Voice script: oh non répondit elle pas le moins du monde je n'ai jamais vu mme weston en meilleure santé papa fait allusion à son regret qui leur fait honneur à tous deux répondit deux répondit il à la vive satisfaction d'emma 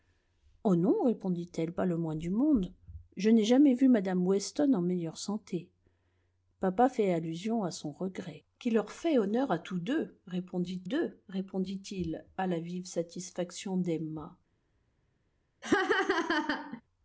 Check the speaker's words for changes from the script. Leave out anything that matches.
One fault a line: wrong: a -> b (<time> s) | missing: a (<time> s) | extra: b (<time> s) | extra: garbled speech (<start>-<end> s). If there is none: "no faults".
no faults